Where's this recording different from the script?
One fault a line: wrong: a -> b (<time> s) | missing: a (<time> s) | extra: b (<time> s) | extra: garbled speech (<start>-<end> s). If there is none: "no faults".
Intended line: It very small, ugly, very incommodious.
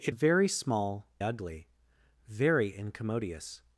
no faults